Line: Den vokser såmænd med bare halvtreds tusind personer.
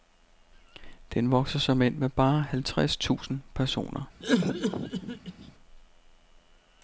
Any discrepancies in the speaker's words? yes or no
no